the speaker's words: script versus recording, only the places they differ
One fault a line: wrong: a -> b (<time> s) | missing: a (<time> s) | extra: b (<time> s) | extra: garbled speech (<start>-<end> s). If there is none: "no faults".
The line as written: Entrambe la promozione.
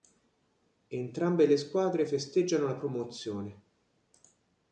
extra: le squadre festeggiano (1.4 s)